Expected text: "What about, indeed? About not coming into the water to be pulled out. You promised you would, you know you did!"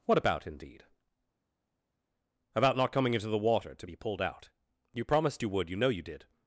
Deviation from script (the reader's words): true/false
false